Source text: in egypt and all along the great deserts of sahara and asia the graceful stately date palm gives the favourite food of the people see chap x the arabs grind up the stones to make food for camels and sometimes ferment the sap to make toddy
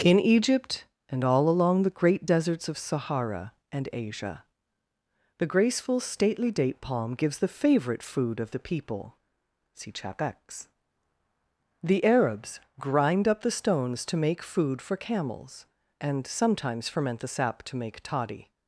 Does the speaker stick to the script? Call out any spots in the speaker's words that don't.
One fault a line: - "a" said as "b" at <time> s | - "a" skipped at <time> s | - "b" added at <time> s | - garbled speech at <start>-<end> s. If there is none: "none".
none